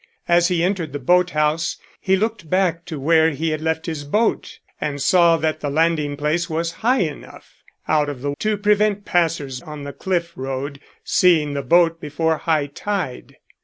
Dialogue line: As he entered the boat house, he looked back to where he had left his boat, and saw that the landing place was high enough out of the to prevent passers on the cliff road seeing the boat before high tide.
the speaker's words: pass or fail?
pass